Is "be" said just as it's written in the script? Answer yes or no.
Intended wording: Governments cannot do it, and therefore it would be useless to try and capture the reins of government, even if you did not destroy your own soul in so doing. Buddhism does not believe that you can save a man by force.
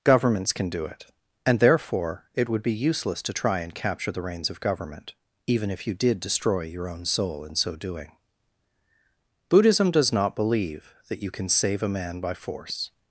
yes